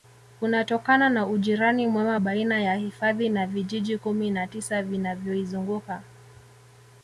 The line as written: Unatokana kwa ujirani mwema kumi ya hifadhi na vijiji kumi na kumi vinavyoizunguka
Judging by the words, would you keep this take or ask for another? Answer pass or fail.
fail